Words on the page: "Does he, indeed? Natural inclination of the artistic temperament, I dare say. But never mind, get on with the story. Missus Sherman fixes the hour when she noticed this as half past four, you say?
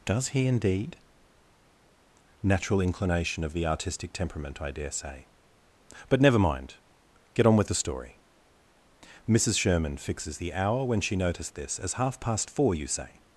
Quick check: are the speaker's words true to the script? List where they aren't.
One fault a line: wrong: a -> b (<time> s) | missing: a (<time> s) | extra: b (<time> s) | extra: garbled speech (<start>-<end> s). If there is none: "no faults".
no faults